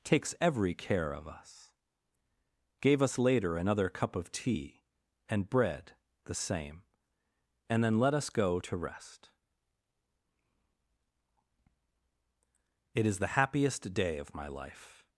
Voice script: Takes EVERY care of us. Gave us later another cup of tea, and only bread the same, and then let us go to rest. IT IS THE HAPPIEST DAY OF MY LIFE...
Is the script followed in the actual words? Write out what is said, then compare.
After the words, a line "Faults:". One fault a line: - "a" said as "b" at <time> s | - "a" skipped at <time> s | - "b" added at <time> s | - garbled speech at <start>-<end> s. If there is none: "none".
Takes EVERY care of us. Gave us later another cup of tea, and bread the same, and then let us go to rest. IT IS THE HAPPIEST DAY OF MY LIFE...
Faults:
- "only" skipped at 5.5 s